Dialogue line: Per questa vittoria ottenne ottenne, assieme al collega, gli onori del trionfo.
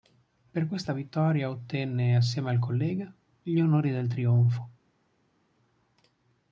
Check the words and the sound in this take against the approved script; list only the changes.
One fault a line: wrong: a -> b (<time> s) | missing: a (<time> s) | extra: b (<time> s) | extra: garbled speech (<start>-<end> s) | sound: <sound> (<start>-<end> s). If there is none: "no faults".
missing: ottenne (2.2 s)